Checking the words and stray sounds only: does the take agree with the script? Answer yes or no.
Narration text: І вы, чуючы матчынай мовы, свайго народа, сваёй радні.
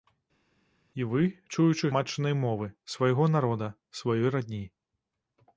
yes